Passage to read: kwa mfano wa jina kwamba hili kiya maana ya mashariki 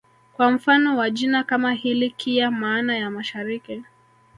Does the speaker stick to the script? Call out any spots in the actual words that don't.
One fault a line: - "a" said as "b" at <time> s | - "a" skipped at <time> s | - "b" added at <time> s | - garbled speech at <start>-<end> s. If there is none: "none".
- "kwamba" said as "kama" at 1.4 s